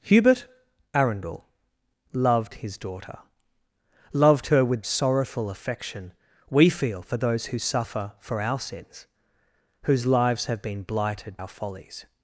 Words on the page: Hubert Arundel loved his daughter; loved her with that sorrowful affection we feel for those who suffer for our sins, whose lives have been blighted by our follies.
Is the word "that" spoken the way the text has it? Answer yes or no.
no